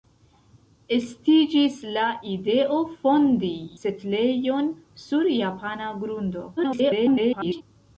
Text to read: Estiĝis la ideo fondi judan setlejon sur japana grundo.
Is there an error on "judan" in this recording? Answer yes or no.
yes